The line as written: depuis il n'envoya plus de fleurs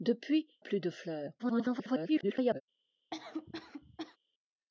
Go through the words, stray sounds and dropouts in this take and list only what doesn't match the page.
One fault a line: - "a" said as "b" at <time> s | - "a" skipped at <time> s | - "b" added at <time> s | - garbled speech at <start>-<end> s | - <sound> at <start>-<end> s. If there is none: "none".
- "il n'envoya" skipped at 0.5 s
- garbled speech at 1.4-2.6 s
- cough at 3.1-4.2 s